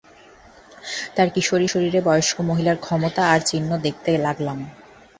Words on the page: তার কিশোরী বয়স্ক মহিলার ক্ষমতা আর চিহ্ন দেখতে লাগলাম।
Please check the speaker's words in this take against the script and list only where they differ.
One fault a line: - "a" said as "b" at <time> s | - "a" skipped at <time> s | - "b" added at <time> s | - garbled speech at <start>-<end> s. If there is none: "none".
- "শরীরে" added at 1.7 s